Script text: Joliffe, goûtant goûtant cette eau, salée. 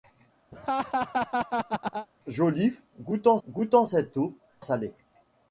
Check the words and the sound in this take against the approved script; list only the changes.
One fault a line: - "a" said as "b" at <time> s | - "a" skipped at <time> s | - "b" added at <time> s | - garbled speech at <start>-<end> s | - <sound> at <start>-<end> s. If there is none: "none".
- laugh at 0.5-2.1 s